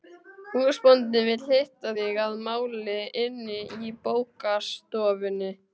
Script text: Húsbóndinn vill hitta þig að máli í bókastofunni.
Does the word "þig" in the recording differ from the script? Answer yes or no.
no